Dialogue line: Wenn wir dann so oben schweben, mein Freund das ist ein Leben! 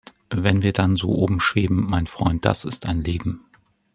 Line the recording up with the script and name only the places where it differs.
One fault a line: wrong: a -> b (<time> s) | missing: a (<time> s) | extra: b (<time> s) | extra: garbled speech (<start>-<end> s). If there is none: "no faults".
no faults